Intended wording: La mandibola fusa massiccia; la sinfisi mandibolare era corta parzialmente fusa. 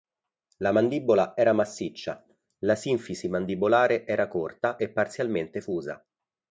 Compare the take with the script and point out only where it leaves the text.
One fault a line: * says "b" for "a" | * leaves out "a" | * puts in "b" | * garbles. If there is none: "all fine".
* says "era" for "fusa"
* puts in "e"